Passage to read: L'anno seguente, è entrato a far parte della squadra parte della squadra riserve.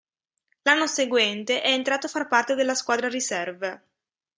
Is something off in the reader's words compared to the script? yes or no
yes